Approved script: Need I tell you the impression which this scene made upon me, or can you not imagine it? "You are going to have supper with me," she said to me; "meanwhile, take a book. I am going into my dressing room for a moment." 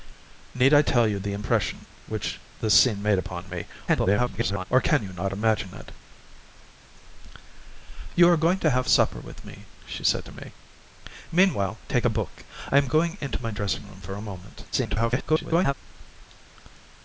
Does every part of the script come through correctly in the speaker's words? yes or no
no